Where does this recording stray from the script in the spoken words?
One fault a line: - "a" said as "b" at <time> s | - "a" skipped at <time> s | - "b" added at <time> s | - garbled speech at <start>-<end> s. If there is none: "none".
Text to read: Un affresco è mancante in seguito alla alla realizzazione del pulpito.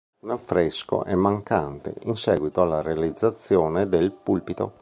- "alla" skipped at 2.8 s